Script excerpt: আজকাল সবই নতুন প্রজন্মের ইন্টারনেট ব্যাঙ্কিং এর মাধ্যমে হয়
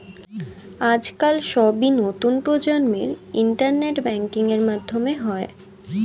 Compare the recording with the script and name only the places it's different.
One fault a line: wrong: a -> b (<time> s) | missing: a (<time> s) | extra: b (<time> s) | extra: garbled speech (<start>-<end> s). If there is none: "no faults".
no faults